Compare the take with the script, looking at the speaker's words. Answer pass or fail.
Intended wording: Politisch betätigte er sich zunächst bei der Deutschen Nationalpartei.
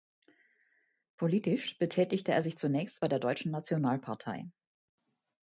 pass